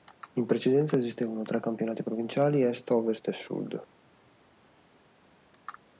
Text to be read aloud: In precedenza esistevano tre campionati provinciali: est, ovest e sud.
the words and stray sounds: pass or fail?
pass